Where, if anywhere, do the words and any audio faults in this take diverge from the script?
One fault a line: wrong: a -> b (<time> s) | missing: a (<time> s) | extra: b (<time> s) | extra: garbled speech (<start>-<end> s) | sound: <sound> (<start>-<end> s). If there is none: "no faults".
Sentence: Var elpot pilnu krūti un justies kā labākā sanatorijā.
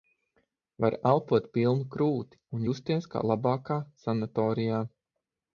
no faults